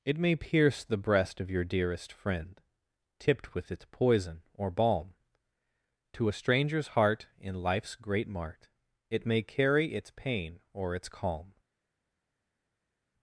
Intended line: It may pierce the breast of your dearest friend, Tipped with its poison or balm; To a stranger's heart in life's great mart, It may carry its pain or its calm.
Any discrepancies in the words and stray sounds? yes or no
no